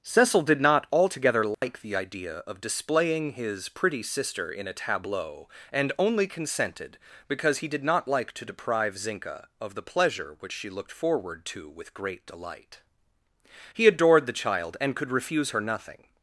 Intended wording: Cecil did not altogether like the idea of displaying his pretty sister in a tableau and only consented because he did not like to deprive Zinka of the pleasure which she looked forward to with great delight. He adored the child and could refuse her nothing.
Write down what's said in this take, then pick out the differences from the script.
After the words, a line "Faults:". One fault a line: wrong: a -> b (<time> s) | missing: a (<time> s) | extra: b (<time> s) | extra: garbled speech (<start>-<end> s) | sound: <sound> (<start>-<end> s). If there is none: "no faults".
Cecil did not altogether like the idea of displaying his pretty sister in a tableau and only consented because he did not like to deprive Zinka of the pleasure which she looked forward to with great delight. He adored the child and could refuse her nothing.
Faults:
sound: dropout (1.5-1.6 s)